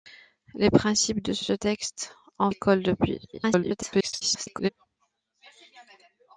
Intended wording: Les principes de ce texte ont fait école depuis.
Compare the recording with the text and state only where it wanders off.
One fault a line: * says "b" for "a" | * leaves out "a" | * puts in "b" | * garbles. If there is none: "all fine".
* puts in "ce"
* leaves out "fait"
* garbles